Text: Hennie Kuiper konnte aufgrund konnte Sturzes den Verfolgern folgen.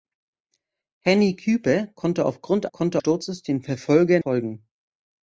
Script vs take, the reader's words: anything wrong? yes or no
no